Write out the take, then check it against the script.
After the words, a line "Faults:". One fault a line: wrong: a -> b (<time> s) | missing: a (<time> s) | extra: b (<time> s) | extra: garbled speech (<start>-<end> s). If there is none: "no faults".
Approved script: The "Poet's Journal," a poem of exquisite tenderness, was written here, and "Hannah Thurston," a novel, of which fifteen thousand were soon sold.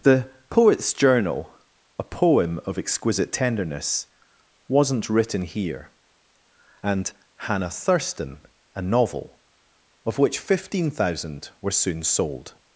The "Poet's Journal," a poem of exquisite tenderness, wasn't written here, and "Hannah Thurston," a novel, of which fifteen thousand were soon sold.
Faults:
wrong: was -> wasn't (4.7 s)